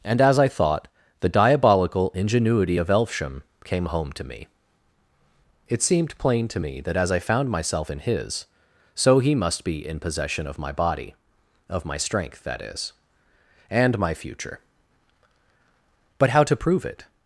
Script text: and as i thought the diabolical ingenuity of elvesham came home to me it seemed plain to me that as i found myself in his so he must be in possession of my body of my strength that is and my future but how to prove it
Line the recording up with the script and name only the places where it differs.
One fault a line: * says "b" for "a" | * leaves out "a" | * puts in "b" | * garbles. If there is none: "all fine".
all fine